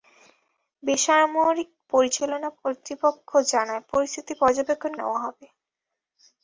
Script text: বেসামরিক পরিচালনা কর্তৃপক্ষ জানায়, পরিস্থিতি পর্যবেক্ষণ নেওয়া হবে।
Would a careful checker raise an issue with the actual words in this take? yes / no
no